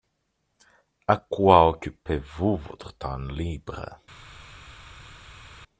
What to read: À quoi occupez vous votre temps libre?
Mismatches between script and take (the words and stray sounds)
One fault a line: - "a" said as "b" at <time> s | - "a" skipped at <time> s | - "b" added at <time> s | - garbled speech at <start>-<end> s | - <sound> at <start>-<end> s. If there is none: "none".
none